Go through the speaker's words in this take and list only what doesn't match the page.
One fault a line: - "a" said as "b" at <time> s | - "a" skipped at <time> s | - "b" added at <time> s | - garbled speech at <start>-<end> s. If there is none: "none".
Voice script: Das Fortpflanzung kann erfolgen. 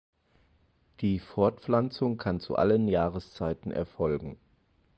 - "Das" said as "Die" at 1.0 s
- "zu allen Jahreszeiten" added at 2.4 s